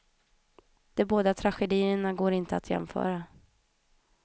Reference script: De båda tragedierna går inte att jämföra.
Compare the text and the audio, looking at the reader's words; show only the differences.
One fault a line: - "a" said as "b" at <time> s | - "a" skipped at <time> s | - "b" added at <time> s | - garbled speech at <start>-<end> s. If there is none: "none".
none